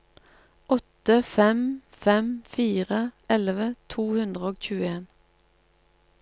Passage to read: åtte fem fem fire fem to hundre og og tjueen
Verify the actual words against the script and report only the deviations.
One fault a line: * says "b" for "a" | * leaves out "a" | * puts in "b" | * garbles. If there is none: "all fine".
* says "elleve" for "fem"
* leaves out "og"